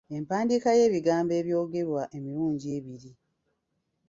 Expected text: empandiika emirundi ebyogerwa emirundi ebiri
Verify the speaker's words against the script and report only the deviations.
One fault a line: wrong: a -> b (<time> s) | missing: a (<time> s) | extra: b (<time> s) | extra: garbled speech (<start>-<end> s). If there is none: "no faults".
wrong: emirundi -> y'ebigambo (0.8 s)